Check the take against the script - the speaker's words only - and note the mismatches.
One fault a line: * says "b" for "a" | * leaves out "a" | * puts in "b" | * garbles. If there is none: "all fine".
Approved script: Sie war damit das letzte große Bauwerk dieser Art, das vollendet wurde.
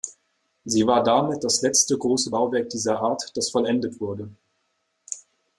all fine